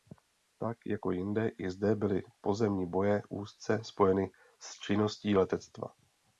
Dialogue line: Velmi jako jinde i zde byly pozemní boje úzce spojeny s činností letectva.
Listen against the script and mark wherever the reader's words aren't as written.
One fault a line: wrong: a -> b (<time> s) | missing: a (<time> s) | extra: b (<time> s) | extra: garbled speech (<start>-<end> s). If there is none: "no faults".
wrong: Velmi -> Tak (0.6 s)